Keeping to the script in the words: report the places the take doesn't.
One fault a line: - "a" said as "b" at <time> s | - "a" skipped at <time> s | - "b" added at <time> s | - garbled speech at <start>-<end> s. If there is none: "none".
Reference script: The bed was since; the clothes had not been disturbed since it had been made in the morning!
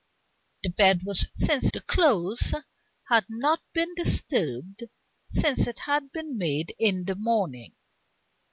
none